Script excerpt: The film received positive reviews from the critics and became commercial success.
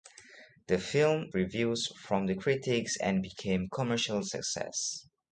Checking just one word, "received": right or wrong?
wrong